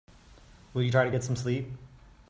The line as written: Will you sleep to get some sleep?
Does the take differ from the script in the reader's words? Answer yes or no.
yes